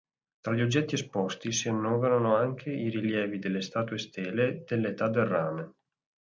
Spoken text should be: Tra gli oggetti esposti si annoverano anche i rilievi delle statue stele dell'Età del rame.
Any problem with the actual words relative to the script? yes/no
no